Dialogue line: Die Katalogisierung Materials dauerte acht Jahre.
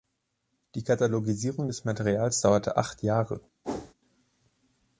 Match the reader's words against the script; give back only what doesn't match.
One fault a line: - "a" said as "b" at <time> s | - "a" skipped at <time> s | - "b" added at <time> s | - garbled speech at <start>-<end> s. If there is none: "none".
- "des" added at 1.7 s